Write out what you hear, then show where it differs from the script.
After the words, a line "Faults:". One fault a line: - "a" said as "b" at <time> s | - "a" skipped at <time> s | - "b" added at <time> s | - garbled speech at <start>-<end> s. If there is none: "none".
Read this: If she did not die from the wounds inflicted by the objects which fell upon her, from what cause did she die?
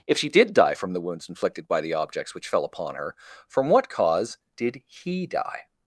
If she did die from the wounds inflicted by the objects which fell upon her, from what cause did he die?
Faults:
- "not" skipped at 0.5 s
- "she" said as "he" at 4.9 s